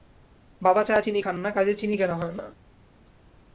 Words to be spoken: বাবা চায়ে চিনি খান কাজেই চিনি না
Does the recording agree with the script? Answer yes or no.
no